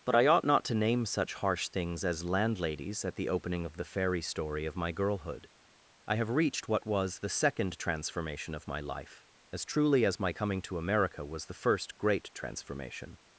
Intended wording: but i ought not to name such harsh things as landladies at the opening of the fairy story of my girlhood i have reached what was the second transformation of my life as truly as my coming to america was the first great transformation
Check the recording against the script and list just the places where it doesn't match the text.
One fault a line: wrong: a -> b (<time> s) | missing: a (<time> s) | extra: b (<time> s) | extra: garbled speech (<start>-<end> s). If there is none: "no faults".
no faults